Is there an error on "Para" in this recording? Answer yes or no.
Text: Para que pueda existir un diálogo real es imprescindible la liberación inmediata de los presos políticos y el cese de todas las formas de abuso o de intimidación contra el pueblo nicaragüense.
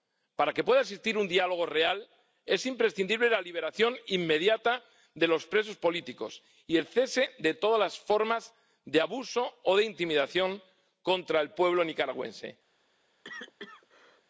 no